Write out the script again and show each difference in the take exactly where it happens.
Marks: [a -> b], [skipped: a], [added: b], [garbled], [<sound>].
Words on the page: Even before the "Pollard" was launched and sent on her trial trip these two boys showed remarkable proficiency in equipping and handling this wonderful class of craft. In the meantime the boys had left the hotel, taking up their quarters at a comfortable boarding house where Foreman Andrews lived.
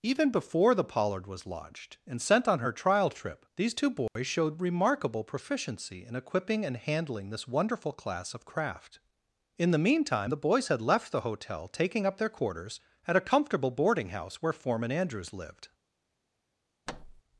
Even before the "Pollard" was launched and sent on her trial trip these two boys [dropout] showed remarkable proficiency in equipping and handling this wonderful class of craft. In the meantime the boys had left the hotel, taking up their quarters at a comfortable boarding house where Foreman Andrews lived. [thud]